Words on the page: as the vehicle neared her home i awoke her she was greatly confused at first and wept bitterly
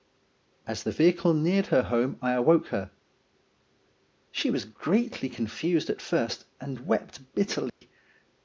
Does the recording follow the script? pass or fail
pass